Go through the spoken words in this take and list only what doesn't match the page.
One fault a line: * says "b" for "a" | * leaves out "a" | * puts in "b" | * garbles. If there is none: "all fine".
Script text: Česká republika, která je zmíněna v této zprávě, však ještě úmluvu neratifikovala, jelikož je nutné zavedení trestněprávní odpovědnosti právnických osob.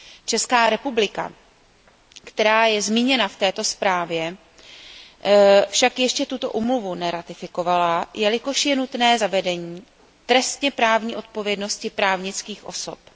* puts in "tuto"